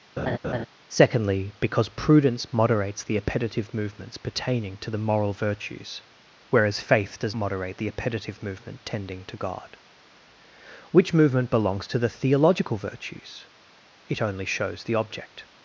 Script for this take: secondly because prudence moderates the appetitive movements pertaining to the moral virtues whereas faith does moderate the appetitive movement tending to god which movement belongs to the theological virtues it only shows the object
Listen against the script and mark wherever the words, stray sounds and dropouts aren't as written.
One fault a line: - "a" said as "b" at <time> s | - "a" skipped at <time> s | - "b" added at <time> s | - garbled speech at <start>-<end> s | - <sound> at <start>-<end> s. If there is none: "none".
- laugh at 0.2-0.7 s